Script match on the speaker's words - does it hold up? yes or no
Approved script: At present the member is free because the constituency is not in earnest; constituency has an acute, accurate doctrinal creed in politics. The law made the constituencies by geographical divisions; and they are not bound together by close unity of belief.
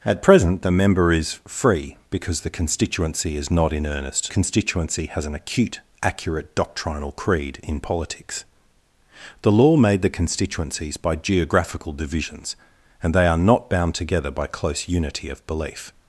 yes